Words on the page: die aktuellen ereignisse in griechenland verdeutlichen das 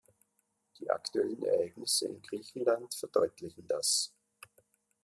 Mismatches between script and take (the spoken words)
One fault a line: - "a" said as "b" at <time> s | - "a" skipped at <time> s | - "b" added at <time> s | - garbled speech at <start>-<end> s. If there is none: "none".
none